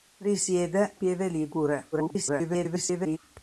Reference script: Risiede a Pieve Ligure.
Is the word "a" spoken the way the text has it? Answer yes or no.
no